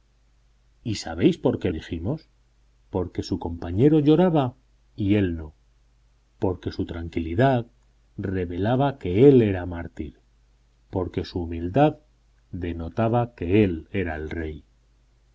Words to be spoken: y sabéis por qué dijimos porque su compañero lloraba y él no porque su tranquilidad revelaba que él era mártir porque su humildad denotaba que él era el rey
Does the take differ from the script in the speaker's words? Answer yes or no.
no